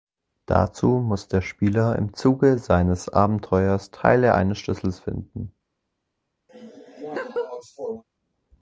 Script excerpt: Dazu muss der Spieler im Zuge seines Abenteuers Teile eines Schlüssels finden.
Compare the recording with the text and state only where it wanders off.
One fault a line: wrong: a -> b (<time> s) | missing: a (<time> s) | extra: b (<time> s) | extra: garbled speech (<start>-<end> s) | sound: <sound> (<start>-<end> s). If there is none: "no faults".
sound: laugh (6.5-8.0 s)